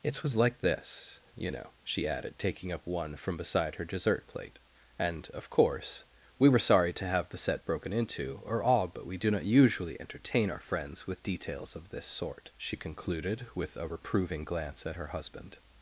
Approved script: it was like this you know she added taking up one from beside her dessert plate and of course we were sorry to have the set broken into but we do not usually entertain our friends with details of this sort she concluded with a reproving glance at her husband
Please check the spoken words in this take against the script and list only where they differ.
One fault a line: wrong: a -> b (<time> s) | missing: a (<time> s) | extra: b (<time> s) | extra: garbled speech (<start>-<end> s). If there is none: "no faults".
extra: or all (8.4 s)